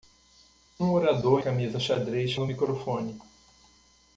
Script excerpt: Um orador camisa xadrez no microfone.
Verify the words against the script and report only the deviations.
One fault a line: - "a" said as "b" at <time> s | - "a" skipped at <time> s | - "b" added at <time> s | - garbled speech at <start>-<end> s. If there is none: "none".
none